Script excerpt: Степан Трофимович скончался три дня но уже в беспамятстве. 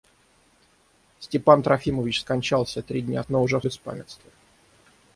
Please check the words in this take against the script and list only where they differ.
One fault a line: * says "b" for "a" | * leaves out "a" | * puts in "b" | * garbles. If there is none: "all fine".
all fine